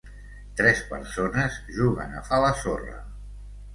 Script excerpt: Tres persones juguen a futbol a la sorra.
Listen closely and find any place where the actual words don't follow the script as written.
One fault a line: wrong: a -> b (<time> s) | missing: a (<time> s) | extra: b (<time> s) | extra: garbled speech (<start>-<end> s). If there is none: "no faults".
missing: futbol (2.3 s)